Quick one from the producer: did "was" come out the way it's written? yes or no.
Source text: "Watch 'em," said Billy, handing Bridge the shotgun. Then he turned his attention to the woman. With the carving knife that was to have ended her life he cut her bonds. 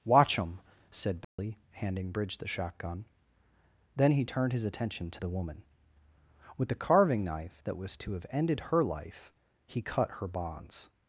yes